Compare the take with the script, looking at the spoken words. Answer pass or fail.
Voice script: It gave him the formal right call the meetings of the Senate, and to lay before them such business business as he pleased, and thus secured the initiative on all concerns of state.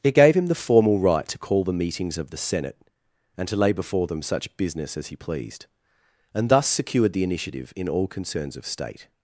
fail